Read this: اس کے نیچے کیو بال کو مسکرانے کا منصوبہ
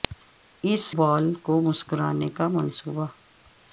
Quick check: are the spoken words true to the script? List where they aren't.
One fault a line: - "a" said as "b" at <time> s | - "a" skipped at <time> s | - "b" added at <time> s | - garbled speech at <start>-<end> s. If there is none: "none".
- "کے نیچے کیو" skipped at 0.8 s